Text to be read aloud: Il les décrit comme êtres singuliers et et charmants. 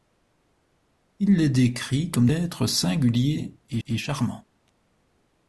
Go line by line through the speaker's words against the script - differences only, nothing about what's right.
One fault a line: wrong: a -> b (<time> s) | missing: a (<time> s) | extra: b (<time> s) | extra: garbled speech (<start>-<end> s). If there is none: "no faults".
no faults